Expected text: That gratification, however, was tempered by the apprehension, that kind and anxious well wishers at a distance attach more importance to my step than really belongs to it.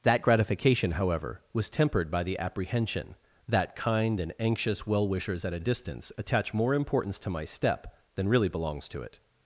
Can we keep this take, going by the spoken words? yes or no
yes